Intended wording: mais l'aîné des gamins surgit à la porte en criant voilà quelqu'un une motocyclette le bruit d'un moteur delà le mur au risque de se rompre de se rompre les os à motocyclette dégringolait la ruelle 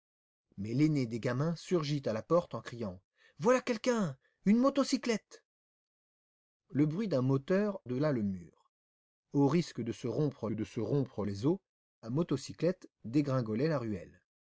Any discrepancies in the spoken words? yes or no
no